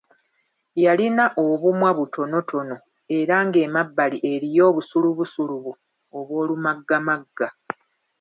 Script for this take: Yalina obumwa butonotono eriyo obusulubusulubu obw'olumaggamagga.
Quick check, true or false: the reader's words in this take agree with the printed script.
false